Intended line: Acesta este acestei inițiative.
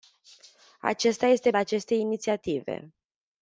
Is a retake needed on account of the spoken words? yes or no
no